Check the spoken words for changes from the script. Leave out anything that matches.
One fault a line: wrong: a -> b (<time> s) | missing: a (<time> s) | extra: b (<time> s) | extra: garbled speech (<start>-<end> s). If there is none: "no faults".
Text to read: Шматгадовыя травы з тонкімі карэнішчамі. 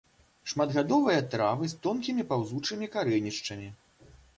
extra: паўзучымі (2.4 s)